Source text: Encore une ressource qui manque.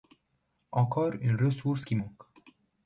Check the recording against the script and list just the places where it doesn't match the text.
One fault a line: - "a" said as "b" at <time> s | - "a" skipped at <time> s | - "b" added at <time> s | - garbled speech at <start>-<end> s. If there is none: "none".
none